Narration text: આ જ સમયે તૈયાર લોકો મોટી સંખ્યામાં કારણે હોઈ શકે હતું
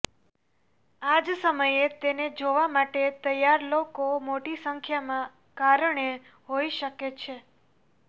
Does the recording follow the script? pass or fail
fail